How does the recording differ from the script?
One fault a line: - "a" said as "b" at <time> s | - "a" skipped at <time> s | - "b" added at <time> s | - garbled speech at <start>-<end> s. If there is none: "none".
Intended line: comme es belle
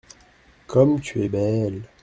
- "tu" added at 1.0 s